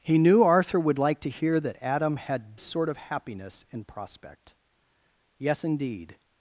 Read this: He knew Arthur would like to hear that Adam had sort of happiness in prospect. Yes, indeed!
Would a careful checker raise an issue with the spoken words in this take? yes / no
no